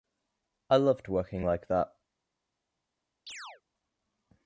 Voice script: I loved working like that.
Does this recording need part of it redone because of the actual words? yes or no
no